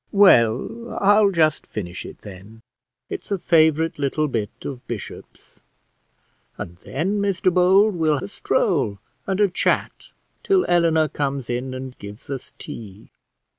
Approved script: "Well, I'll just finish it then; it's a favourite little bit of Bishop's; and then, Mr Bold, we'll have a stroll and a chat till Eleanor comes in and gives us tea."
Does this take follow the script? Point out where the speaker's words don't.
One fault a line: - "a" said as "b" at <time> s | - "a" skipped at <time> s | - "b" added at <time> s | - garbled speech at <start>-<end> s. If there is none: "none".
- "have" skipped at 8.2 s